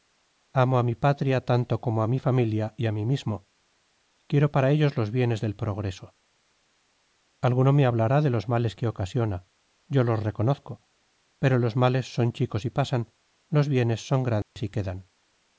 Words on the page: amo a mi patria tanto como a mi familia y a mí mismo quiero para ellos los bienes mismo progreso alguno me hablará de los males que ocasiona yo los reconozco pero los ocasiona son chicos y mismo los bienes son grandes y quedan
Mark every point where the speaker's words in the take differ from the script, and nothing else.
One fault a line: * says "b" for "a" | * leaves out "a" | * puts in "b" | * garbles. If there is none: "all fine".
* says "del" for "mismo"
* says "males" for "ocasiona"
* says "pasan" for "mismo"